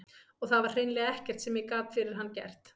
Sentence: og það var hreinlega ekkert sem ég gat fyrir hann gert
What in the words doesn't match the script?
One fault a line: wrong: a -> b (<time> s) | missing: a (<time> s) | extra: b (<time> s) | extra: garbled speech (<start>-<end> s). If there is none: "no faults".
no faults